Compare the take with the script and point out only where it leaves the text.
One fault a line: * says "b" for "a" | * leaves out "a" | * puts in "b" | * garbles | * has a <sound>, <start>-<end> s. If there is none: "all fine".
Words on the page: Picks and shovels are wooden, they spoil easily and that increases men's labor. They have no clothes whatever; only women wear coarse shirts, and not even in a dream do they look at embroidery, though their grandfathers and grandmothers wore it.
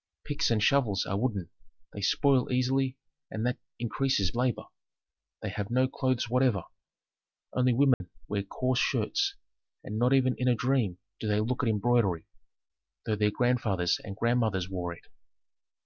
* leaves out "men's"
* has a dropout, 7.9-8.0 s